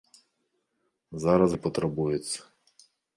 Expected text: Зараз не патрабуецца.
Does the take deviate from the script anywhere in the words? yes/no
no